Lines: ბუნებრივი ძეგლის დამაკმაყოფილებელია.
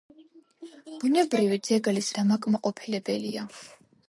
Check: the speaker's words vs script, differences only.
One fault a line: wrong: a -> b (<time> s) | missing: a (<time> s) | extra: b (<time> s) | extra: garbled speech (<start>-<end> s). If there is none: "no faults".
no faults